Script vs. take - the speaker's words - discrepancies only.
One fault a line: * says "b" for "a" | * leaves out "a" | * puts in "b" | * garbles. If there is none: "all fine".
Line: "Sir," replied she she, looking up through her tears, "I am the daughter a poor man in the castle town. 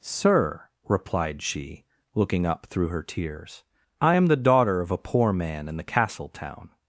* leaves out "she"
* puts in "of"